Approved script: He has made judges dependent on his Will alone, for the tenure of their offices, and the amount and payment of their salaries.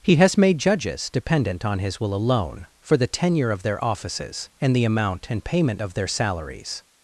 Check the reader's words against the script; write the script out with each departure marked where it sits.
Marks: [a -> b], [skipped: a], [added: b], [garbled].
He has made judges dependent on his Will alone, for the tenure of their offices, and the amount and payment of their salaries.